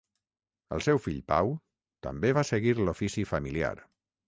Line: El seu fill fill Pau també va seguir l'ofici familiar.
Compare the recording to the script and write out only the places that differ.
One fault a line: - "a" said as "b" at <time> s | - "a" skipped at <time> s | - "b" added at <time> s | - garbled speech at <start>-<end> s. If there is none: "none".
- "fill" skipped at 1.2 s